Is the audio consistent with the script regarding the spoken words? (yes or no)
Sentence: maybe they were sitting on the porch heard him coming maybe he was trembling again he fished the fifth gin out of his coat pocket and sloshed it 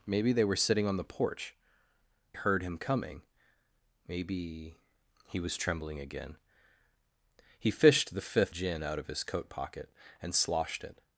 yes